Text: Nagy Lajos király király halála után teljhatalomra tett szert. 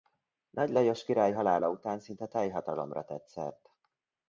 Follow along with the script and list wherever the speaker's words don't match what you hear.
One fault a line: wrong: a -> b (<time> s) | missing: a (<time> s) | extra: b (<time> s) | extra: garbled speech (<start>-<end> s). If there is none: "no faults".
missing: király (1.3 s)
extra: szinte (2.0 s)